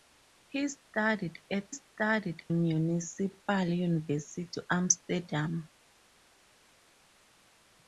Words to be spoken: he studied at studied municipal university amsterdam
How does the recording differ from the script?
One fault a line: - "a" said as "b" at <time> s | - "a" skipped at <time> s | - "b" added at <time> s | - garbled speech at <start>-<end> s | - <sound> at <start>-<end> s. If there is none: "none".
none